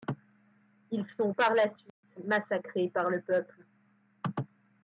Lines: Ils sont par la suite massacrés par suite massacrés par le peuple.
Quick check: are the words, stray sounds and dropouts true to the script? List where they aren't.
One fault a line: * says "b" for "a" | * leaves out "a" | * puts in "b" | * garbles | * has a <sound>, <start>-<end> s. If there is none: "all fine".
* has a dropout, 1.9-2.0 s
* leaves out "suite massacrés par"